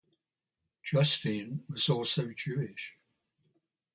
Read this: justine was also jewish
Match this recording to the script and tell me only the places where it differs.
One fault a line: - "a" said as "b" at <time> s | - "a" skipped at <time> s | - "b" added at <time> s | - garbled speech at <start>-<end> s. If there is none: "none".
none